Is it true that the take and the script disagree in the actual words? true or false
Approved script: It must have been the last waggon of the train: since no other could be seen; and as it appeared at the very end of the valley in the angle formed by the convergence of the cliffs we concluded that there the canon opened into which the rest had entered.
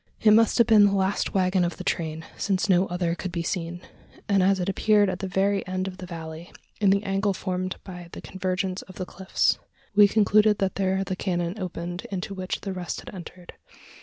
false